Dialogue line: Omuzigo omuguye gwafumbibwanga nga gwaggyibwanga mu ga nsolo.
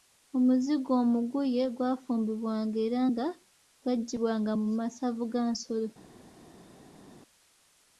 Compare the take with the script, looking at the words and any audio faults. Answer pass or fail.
fail